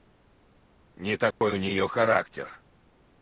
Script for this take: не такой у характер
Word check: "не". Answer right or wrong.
right